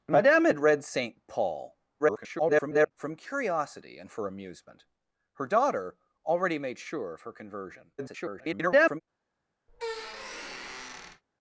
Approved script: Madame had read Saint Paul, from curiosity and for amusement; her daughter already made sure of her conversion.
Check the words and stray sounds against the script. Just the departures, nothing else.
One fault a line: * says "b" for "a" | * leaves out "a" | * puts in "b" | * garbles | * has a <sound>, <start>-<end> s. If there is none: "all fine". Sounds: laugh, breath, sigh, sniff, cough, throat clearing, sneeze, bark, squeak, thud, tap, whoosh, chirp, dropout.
* garbles
* garbles
* has a squeak, 9.7-11.2 s